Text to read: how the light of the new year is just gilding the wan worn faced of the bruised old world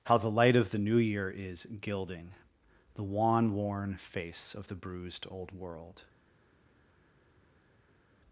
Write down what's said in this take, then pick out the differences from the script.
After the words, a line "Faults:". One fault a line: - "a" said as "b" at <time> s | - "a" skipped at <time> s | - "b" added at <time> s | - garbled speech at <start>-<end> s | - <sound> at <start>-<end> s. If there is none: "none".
how the light of the new year is gilding the wan worn face of the bruised old world
Faults:
- "just" skipped at 1.7 s
- "faced" said as "face" at 4.0 s